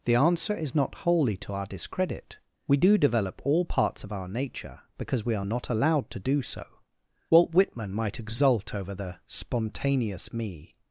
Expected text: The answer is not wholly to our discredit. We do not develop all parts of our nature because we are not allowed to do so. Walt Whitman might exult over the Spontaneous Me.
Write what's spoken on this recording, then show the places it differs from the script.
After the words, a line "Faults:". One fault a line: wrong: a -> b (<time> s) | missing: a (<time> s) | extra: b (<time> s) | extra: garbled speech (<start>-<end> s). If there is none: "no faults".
The answer is not wholly to our discredit. We do develop all parts of our nature because we are not allowed to do so. Walt Whitman might exult over the Spontaneous Me.
Faults:
missing: not (3.0 s)